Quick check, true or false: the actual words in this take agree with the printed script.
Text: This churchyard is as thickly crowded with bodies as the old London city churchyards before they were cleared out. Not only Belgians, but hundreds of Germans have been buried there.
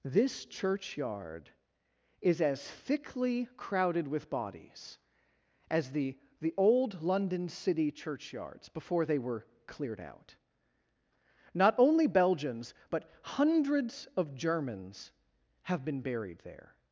false